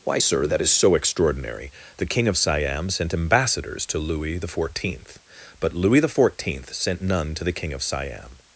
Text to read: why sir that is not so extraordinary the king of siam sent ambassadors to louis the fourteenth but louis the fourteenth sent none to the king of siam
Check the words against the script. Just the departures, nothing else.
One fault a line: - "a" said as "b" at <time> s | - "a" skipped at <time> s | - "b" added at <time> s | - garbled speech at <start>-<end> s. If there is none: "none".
- "not" skipped at 0.7 s